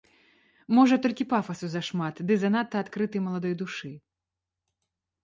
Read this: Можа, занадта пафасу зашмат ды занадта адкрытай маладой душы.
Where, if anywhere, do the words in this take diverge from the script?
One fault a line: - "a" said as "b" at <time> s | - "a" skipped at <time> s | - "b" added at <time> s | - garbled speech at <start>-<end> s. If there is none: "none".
- "занадта" said as "толькі" at 1.0 s